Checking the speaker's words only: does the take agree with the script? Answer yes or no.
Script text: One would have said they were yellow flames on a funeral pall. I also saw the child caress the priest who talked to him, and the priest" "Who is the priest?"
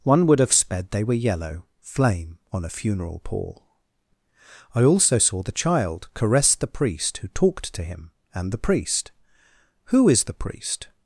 no